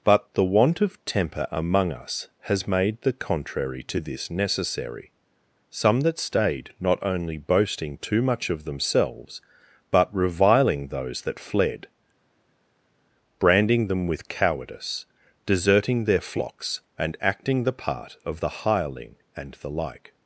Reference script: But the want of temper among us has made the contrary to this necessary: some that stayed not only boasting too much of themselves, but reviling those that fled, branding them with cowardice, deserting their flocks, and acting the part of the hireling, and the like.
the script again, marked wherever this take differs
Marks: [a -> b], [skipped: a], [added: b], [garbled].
But the want of temper among us has made the contrary to this necessary: some that stayed not only boasting too much of themselves, but reviling those that fled, branding them with cowardice, deserting their flocks, and acting the part of the hireling, and the like.